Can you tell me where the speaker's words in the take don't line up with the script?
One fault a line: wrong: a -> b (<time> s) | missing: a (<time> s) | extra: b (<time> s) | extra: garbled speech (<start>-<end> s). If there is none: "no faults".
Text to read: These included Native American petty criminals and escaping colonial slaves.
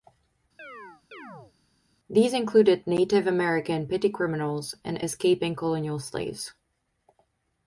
no faults